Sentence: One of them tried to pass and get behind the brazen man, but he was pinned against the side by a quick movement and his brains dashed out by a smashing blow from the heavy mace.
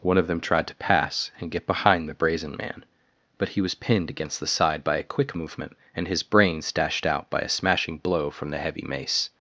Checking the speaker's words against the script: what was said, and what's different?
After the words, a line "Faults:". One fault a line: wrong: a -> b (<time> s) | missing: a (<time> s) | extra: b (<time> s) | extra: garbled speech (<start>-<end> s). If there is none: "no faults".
One of them tried to pass and get behind the brazen man, but he was pinned against the side by a quick movement and his brains dashed out by a smashing blow from the heavy mace.
Faults:
no faults